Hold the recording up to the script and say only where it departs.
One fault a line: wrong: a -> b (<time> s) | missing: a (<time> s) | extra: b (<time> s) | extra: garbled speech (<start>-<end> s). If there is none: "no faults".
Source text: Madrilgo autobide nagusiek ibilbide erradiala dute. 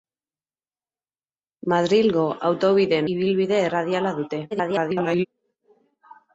missing: nagusiek (3.0 s)
extra: garbled speech (4.5-5.3 s)